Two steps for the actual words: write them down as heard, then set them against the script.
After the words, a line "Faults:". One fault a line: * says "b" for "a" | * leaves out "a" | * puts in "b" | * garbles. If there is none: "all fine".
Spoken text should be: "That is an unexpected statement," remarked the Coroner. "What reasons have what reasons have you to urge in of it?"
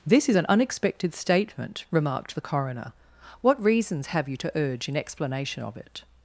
"This is an unexpected statement," remarked the Coroner. "What reasons have you to urge in explanation of it?"
Faults:
* says "This" for "That"
* leaves out "what reasons have"
* puts in "explanation"